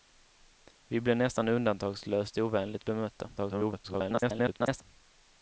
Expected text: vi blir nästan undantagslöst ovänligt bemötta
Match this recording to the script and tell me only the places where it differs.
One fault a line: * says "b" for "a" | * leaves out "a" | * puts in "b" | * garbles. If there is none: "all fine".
* garbles